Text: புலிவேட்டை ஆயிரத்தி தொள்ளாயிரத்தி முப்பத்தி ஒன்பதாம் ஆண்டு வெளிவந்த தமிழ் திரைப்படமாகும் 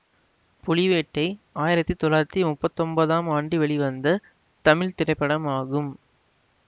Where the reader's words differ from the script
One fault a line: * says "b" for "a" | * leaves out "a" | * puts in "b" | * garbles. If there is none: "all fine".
all fine